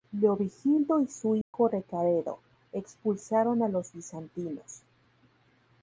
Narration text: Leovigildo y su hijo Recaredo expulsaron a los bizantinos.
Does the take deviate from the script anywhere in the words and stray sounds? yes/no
yes